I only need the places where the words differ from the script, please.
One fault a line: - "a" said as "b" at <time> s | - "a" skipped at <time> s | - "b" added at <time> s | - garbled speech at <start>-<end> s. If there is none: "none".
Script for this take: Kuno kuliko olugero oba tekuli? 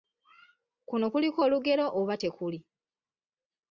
none